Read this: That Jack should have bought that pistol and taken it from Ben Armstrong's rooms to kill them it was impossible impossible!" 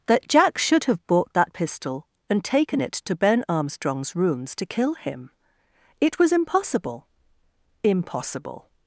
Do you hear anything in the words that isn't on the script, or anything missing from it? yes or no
yes